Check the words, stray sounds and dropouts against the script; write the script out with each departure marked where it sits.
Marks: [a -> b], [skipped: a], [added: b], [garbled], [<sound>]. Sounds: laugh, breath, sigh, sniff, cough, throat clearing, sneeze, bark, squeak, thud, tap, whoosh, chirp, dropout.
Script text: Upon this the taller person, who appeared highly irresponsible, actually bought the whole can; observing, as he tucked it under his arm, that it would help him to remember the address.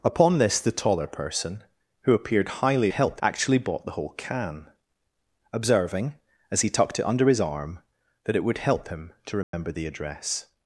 Upon this the taller person, who appeared highly [irresponsible, -> help] actually bought the whole can; observing, as he tucked it under his arm, that it would help him to remember [dropout] the address.